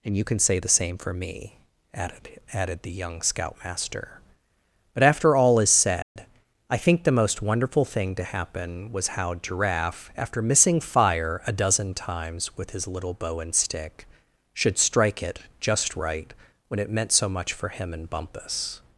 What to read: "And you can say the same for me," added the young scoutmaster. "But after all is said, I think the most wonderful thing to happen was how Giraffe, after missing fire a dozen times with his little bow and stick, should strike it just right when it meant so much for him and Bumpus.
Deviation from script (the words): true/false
true